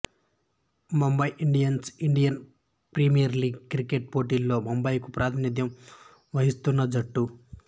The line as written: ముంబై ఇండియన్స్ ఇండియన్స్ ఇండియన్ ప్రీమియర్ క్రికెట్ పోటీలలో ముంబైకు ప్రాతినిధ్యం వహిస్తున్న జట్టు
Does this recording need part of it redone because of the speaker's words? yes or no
yes